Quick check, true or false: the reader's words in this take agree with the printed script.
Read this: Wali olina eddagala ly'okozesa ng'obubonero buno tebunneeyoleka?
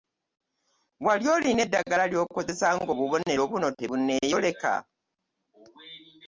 true